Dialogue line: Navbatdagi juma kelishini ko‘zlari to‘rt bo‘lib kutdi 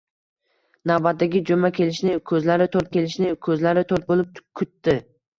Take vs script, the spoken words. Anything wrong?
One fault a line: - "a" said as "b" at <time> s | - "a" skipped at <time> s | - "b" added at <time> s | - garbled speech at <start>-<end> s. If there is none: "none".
- "kelishini ko‘zlari to‘rt" added at 3.0 s